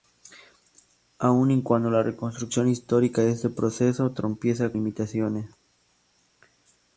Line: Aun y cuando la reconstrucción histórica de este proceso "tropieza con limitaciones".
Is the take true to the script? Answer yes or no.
no